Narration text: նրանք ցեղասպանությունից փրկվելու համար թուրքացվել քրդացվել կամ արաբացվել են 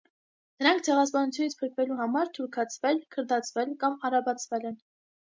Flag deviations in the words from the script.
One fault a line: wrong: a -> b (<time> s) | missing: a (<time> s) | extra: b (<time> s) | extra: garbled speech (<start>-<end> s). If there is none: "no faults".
no faults